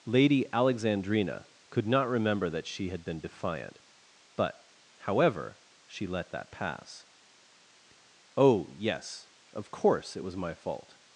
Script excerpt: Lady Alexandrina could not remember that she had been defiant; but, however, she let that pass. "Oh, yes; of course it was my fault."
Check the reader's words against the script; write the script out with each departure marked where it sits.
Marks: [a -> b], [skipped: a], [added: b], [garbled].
Lady Alexandrina could not remember that she had been defiant; but, however, she let that pass. "Oh, yes; of course it was my fault."